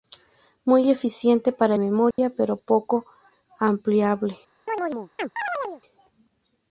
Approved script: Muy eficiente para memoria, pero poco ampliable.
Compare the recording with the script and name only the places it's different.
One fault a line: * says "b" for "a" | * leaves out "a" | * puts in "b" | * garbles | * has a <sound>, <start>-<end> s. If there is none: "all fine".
* has a dropout, 2.1-2.2 s
* has a chirp, 4.7-5.8 s